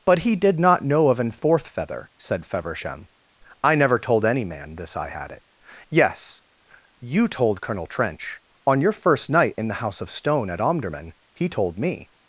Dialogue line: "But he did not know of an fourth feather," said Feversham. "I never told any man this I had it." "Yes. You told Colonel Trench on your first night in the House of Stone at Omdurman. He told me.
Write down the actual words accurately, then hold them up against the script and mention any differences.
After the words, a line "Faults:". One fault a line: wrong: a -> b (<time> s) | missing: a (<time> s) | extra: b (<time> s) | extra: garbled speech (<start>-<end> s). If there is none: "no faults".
"But he did not know of an fourth feather," said Feversham. "I never told any man this I had it." "Yes. You told Colonel Trench on your first night in the House of Stone at Omdurman. He told me.
Faults:
no faults